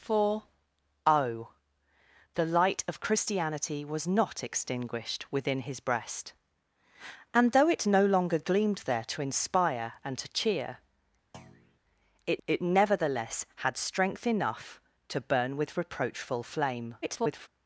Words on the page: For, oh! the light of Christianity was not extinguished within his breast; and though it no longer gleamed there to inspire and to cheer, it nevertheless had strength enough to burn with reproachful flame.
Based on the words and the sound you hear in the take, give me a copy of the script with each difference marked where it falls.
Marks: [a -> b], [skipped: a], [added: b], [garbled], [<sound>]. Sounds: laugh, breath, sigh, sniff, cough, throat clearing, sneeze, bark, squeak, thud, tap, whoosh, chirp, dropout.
For, oh! the light of Christianity was not extinguished within his breast; and though it no longer gleamed there to inspire and to cheer, [thud] it [added: it] nevertheless had strength enough to burn with reproachful flame. [garbled]